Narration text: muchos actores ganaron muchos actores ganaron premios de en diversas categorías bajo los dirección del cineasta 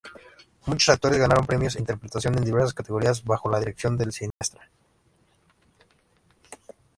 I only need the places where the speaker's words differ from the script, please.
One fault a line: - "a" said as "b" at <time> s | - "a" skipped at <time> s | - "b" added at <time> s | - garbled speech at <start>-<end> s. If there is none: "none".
- "muchos actores ganaron" skipped at 1.4 s
- "interpretación" added at 1.8 s
- "los" said as "la" at 3.5 s